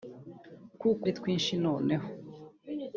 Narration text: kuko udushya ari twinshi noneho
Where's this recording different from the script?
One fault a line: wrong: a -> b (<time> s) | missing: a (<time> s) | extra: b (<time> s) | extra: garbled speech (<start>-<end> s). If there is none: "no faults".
missing: udushya (1.0 s)